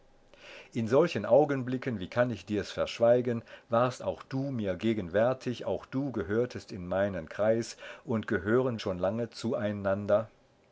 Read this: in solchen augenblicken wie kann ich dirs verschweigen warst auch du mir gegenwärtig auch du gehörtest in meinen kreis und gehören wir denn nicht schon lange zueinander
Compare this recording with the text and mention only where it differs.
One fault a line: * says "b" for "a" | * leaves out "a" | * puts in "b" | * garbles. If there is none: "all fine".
* leaves out "wir denn nicht"